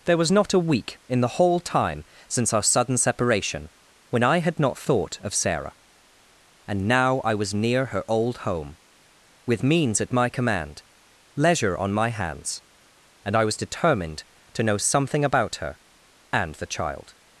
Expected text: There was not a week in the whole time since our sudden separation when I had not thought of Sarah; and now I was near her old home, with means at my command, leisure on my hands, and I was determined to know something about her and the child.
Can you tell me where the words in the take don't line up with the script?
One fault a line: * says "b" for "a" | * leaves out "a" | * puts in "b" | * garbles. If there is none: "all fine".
all fine